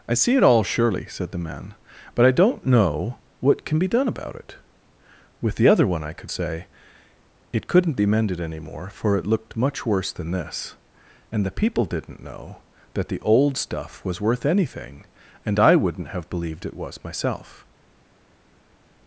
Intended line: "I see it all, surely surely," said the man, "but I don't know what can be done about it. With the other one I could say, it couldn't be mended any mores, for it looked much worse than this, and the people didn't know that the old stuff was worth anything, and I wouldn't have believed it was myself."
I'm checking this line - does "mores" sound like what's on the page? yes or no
no